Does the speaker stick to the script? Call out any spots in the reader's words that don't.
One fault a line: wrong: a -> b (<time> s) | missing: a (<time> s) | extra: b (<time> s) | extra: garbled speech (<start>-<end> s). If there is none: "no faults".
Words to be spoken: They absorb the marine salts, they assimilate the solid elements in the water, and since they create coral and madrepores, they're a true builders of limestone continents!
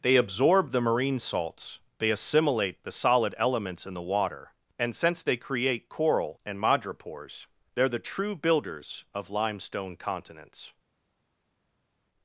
wrong: a -> the (7.9 s)